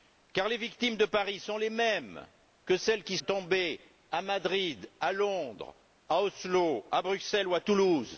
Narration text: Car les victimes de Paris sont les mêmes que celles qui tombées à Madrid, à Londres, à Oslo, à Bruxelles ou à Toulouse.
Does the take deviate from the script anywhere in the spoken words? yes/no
no